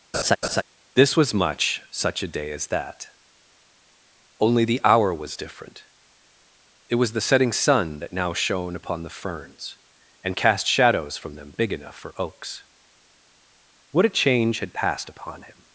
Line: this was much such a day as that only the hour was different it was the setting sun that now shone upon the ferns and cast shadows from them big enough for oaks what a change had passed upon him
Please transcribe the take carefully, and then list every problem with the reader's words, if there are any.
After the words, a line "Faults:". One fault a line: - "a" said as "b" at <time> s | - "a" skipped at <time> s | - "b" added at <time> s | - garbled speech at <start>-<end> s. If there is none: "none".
this was much such a day as that only the hour was different it was the setting sun that now shone upon the ferns and cast shadows from them big enough for oaks what a change had passed upon him
Faults:
none